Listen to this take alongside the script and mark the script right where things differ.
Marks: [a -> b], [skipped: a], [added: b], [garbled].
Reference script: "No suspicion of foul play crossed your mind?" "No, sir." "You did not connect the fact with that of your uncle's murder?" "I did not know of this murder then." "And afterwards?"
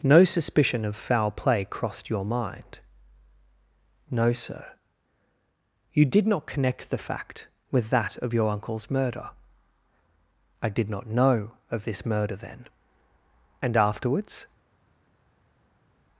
"No suspicion of foul play crossed your mind?" "No, sir." "You did not connect the fact with that of your uncle's murder?" "I did not know of this murder then." "And afterwards?"